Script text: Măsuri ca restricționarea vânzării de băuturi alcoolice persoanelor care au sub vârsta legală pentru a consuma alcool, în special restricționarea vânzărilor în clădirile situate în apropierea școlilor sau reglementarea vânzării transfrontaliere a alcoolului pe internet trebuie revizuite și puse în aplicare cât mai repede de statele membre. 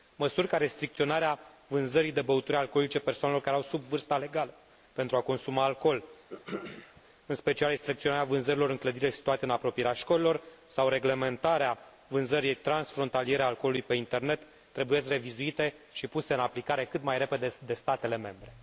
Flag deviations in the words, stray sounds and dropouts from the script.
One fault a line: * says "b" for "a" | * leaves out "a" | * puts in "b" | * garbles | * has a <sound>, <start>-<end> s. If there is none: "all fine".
* has a throat clearing, 6.3-7.0 s